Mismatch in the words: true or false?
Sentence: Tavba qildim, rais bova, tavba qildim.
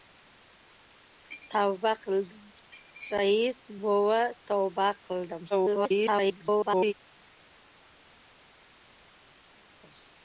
true